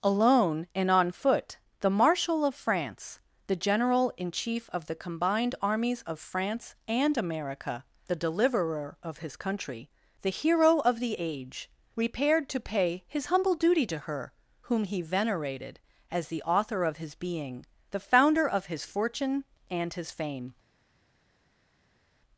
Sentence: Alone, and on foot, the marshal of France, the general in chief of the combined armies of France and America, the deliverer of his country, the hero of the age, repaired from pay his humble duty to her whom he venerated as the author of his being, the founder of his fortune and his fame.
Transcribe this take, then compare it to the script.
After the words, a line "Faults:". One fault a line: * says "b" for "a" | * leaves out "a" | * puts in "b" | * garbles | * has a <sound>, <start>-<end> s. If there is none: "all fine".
Alone, and on foot, the marshal of France, the general in chief of the combined armies of France and America, the deliverer of his country, the hero of the age, repaired to pay his humble duty to her whom he venerated as the author of his being, the founder of his fortune and his fame.
Faults:
* says "to" for "from"